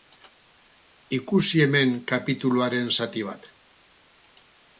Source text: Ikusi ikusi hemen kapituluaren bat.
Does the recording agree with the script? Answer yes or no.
no